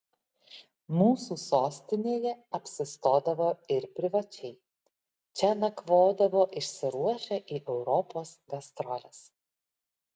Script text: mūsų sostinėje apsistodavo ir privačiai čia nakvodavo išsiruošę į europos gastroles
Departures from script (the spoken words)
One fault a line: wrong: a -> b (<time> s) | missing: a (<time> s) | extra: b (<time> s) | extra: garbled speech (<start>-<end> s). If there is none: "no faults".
no faults